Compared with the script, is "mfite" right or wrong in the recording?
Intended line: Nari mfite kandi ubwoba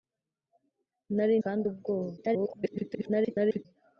wrong